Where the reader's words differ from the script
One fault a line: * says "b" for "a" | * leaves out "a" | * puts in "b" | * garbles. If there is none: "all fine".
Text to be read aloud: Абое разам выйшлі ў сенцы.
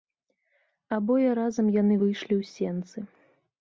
* puts in "яны"